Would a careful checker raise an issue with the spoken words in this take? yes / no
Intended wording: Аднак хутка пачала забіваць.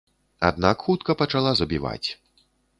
no